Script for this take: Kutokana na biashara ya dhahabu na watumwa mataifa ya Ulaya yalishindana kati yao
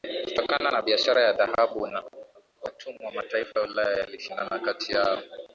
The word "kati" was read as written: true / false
true